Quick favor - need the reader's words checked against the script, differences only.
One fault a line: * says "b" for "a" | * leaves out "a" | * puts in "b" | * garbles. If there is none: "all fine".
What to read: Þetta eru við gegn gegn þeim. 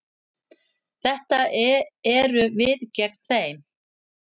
* leaves out "gegn"